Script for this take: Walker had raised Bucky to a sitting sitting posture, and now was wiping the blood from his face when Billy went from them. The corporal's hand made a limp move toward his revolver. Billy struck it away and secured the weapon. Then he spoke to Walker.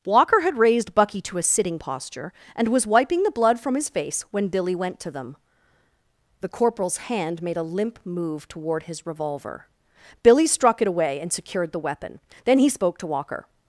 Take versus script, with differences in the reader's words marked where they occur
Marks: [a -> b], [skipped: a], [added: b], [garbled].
Walker had raised Bucky to a sitting [skipped: sitting] posture, and [skipped: now] was wiping the blood from his face when Billy went [from -> to] them. The corporal's hand made a limp move toward his revolver. Billy struck it away and secured the weapon. Then he spoke to Walker.